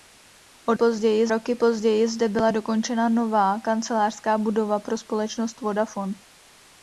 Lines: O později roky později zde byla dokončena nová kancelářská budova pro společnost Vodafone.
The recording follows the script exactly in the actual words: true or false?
true